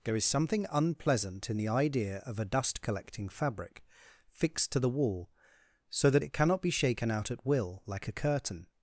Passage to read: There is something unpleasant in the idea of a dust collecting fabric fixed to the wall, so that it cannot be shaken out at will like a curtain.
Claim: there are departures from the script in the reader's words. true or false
false